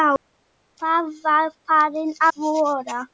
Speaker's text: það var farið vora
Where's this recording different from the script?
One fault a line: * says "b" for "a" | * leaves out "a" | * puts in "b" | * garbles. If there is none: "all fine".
all fine